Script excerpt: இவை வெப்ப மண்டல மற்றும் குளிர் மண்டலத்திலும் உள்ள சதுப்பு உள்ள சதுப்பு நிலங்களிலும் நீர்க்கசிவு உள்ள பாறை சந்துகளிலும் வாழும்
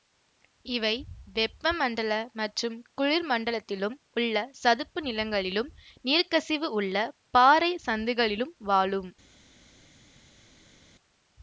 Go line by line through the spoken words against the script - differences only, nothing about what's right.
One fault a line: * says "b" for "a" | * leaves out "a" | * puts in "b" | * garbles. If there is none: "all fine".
* leaves out "உள்ள சதுப்பு"